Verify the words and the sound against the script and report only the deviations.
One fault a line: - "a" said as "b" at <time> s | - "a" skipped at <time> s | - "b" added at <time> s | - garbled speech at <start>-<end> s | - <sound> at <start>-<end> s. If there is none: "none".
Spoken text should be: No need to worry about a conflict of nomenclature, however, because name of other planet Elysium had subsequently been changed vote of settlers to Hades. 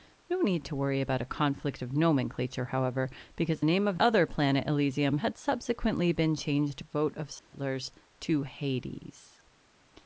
- dropout at 7.4-7.5 s